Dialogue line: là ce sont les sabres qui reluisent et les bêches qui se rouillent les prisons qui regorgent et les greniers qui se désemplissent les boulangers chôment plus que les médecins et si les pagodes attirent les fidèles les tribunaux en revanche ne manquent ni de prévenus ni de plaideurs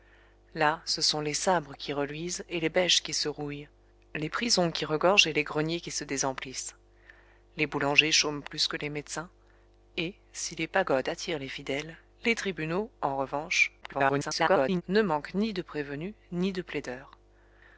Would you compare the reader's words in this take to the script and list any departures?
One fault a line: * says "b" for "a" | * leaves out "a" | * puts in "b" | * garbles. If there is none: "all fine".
* garbles